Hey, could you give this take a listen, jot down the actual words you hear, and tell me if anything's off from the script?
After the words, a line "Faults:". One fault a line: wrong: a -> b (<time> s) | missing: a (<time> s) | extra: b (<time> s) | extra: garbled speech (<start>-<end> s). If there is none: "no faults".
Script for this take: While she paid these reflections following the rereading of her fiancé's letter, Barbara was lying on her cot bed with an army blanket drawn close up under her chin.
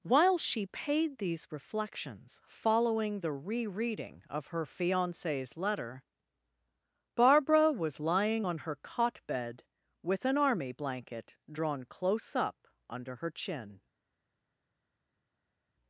While she paid these reflections following the rereading of her fiancé's letter, Barbara was lying on her cot bed with an army blanket drawn close up under her chin.
Faults:
no faults